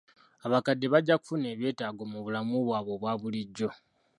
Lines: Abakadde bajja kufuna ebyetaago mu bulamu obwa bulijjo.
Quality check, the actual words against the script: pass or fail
fail